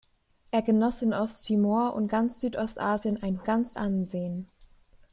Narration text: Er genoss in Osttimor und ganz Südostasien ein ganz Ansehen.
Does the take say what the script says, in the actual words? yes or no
yes